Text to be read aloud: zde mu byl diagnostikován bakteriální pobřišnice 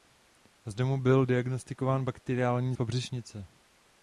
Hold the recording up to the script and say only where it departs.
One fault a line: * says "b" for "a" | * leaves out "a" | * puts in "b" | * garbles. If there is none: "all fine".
all fine